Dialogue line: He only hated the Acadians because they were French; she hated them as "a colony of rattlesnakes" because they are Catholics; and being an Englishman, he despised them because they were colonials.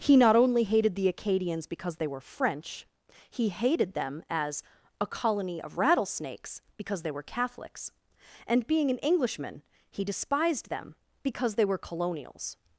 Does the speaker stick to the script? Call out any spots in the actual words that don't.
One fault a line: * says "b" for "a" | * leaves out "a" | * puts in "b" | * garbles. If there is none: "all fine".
* puts in "not"
* says "he" for "she"
* says "were" for "are"